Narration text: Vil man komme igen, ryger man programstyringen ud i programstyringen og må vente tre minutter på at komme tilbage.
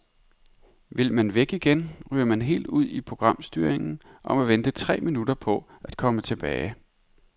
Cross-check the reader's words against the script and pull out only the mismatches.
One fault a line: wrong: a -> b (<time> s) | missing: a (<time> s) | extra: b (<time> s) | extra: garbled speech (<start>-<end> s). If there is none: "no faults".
wrong: komme -> væk (1.3 s)
wrong: programstyringen -> helt (2.4 s)